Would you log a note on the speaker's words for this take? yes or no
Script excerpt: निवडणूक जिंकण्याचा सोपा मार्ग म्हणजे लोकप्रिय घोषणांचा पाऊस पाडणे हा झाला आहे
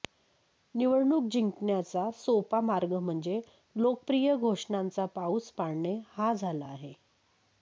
no